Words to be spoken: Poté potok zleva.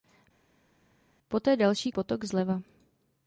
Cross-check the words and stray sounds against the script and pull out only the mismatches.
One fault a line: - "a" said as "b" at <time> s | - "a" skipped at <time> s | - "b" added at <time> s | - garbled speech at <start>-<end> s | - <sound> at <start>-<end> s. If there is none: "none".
- "další" added at 1.6 s